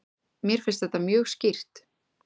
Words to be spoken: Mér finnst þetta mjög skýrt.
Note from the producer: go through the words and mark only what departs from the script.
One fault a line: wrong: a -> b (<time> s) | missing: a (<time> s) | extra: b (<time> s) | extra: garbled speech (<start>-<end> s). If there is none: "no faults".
no faults